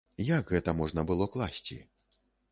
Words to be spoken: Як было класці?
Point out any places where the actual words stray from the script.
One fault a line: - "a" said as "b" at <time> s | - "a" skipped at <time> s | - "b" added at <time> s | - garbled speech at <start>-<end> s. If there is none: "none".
- "гэта можна" added at 0.5 s